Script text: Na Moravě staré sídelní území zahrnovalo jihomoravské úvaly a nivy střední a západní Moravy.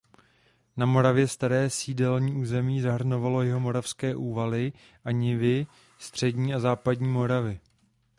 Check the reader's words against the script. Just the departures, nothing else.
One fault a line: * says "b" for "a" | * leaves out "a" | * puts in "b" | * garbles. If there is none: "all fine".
all fine